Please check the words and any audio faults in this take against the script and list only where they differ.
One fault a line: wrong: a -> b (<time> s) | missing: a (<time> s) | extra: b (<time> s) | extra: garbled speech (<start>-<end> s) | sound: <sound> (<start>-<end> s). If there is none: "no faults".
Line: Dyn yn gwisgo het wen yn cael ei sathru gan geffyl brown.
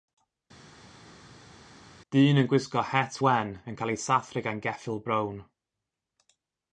no faults